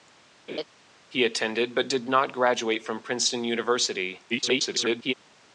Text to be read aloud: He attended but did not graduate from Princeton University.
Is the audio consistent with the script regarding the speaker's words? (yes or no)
no